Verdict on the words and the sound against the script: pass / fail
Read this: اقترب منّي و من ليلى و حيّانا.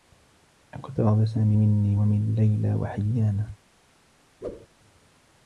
fail